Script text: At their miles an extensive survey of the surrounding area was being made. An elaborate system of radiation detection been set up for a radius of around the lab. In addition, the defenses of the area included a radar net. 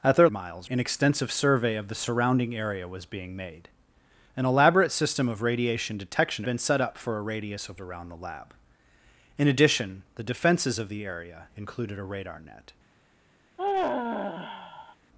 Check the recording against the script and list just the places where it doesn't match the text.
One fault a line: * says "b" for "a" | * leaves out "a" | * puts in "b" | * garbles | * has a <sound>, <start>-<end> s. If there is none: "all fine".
* has a sigh, 13.6-15.0 s